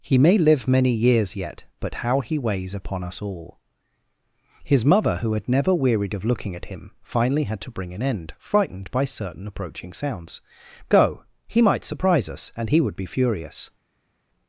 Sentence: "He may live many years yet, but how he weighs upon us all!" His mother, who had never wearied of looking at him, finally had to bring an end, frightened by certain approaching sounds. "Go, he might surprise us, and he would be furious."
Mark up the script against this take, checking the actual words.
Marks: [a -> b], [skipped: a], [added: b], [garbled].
"He may live many years yet, but how he weighs upon us all!" His mother, who had never wearied of looking at him, finally had to bring an end, frightened by certain approaching sounds. "Go, he might surprise us, and he would be furious."